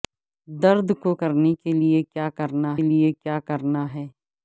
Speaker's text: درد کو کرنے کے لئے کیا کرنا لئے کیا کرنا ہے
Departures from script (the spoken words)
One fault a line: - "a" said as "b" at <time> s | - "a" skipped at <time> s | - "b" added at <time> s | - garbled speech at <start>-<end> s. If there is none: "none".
none